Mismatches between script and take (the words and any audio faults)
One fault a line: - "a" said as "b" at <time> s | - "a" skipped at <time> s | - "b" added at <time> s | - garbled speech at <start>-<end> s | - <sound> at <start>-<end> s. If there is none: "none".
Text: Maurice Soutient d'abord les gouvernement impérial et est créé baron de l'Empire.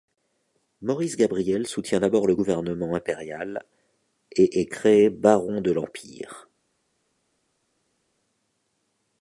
- "Gabriel" added at 1.1 s
- "les" said as "le" at 2.2 s